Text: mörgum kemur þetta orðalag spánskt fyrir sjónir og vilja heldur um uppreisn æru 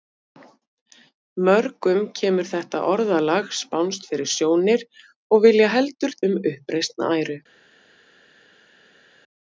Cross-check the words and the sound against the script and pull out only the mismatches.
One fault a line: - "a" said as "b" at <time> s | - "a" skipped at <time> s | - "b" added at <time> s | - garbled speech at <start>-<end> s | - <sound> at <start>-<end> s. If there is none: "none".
none